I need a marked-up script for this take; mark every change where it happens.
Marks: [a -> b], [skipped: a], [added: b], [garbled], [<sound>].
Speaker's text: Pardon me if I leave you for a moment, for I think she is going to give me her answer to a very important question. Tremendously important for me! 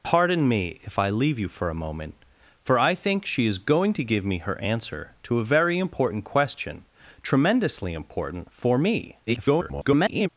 Pardon me if I leave you for a moment, for I think she is going to give me her answer to a very important question. Tremendously important for me! [garbled]